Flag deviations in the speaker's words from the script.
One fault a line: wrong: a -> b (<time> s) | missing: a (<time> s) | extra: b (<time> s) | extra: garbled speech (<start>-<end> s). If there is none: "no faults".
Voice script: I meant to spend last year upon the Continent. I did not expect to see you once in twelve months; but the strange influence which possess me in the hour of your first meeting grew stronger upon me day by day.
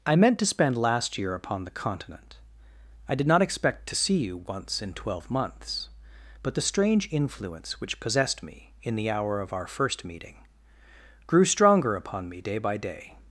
wrong: possess -> possessed (8.0 s)
wrong: your -> our (9.5 s)